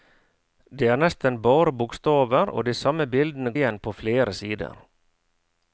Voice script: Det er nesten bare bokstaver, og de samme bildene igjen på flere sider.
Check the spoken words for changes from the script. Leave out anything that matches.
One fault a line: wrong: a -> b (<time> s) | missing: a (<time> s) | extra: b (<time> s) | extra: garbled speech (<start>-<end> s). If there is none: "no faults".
no faults